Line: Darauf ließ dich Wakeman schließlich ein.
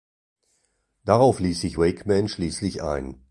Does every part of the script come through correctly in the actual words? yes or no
no